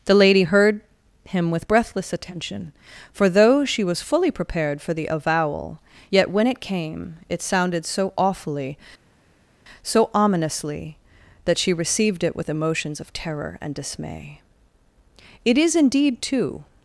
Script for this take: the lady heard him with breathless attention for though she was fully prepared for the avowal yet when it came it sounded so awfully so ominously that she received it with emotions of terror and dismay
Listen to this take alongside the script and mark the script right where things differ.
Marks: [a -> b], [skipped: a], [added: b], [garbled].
the lady heard him with breathless attention for though she was fully prepared for the avowal yet when it came it sounded so awfully so ominously that she received it with emotions of terror and dismay [added: it is indeed too]